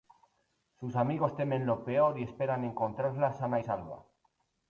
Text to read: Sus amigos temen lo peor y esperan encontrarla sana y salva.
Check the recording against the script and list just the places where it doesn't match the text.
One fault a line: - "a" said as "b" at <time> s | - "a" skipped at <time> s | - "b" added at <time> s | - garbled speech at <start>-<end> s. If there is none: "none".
none